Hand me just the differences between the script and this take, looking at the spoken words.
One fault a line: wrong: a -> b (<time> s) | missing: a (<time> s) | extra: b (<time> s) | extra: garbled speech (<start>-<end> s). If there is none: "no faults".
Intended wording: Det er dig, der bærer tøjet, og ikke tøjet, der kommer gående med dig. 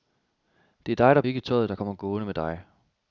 missing: bærer tøjet og (1.2 s)